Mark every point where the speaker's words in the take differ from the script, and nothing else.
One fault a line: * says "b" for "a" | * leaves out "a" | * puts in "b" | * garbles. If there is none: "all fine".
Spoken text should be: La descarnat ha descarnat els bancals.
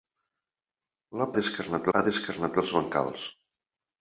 all fine